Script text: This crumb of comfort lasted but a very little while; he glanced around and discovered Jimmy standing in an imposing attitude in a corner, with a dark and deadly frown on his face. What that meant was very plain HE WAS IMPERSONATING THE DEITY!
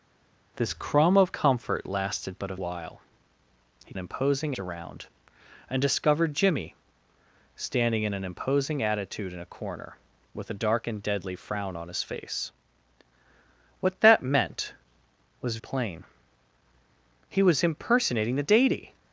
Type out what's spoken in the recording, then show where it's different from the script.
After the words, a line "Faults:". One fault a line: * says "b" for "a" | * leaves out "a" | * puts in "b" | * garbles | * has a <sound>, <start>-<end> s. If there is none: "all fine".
This crumb of comfort lasted but a while; he imposing around and discovered Jimmy standing in an imposing attitude in a corner, with a dark and deadly frown on his face. What that meant was plain HE WAS IMPERSONATING THE DEITY!
Faults:
* leaves out "very little"
* says "imposing" for "glanced"
* leaves out "very"